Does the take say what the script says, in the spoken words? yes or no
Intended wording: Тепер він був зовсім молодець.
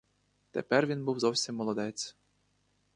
yes